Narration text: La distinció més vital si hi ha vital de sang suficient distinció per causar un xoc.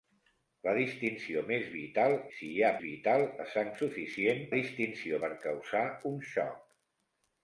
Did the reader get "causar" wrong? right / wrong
right